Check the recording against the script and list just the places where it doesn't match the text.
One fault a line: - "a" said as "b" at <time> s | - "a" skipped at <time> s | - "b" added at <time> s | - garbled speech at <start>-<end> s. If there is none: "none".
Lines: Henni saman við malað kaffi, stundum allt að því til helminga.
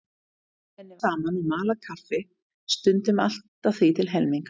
none